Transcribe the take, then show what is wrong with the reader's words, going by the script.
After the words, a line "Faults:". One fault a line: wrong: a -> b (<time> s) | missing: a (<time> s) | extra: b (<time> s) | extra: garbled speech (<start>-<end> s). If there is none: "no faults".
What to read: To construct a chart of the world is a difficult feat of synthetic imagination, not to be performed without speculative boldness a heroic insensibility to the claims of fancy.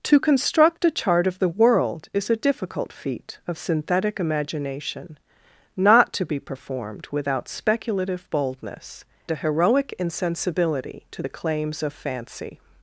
To construct a chart of the world is a difficult feat of synthetic imagination, not to be performed without speculative boldness a heroic insensibility to the claims of fancy.
Faults:
no faults